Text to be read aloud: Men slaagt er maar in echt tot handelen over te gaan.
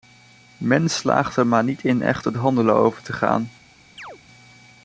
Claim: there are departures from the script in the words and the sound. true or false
true